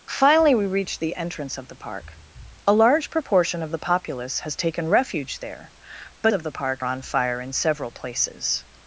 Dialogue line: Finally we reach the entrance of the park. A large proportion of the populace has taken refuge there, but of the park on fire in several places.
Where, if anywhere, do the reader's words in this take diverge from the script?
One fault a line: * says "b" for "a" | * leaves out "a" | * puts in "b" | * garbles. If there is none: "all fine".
all fine